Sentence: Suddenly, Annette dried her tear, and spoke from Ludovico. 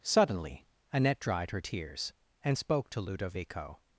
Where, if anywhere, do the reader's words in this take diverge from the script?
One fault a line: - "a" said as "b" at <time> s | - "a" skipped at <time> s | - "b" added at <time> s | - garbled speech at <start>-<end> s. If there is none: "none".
- "tear" said as "tears" at 1.6 s
- "from" said as "to" at 2.9 s